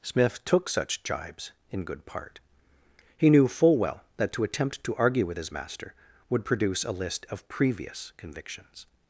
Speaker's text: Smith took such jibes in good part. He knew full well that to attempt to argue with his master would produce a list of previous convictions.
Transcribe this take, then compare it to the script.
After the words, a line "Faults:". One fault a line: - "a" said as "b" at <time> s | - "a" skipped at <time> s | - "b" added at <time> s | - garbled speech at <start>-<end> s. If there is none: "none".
Smith took such jibes in good part. He knew full well that to attempt to argue with his master would produce a list of previous convictions.
Faults:
none